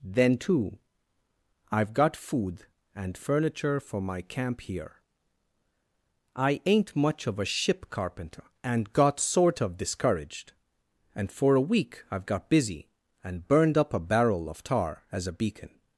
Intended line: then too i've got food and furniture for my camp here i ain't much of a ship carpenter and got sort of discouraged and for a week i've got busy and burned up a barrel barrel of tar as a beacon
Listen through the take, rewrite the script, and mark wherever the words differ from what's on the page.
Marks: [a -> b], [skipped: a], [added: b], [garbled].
then too i've got food and furniture for my camp here i ain't much of a ship carpenter and got sort of discouraged and for a week i've got busy and burned up a barrel [skipped: barrel] of tar as a beacon